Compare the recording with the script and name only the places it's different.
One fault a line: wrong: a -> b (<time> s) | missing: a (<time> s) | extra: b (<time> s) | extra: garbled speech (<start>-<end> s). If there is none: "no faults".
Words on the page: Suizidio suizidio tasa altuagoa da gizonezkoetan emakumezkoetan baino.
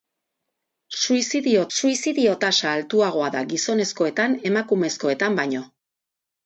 no faults